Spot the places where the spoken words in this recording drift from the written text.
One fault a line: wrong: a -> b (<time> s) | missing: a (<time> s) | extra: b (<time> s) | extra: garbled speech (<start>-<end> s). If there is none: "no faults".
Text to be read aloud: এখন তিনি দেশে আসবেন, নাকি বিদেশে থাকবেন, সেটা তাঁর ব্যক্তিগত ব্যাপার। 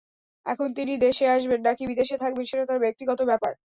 no faults